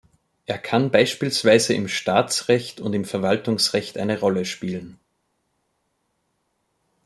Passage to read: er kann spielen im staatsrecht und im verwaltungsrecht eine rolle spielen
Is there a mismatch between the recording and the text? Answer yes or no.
yes